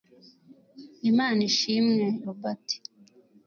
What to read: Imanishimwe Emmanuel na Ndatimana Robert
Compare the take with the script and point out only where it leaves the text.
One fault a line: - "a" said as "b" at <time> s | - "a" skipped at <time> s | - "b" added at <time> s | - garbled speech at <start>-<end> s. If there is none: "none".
- "Emmanuel na Ndatimana" skipped at 2.0 s